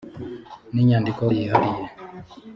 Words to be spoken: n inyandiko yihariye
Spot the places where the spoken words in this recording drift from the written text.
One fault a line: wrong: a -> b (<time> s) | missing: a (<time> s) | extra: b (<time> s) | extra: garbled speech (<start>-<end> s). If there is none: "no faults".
no faults